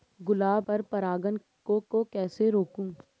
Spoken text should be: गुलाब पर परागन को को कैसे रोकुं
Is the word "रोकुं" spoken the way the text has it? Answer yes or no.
yes